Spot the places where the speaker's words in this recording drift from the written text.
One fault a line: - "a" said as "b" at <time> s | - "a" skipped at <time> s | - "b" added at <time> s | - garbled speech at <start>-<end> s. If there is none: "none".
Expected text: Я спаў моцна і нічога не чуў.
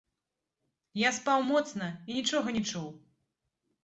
none